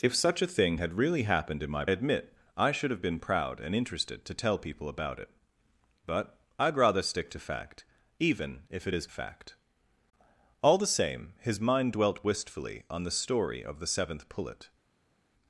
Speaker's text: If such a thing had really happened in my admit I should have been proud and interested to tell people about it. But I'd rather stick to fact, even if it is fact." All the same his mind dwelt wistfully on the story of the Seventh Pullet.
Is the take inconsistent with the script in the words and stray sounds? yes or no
no